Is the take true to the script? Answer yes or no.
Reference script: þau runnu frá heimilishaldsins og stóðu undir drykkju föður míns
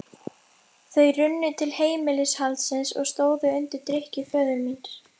no